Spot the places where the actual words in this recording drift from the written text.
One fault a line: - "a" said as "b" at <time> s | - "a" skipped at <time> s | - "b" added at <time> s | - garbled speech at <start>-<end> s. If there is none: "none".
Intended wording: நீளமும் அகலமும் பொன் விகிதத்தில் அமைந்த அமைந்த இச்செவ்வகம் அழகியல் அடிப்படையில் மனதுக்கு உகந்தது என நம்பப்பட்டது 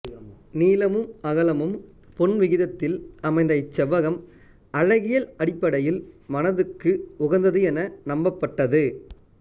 - "அமைந்த" skipped at 3.5 s